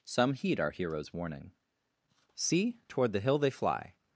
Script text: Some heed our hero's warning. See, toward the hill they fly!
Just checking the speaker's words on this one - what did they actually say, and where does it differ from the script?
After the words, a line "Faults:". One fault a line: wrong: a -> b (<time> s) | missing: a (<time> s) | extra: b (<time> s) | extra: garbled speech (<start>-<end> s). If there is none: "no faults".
Some heed our hero's warning. See, toward the hill they fly!
Faults:
no faults